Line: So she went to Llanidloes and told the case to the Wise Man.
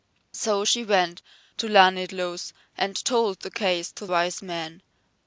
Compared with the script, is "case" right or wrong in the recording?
right